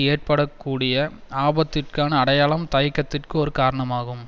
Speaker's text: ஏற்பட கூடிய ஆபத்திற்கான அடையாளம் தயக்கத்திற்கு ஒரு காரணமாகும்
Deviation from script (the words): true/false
false